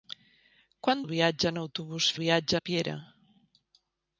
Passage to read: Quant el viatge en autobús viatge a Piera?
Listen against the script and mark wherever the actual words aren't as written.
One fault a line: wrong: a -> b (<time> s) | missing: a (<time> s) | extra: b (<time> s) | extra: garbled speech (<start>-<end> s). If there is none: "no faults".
no faults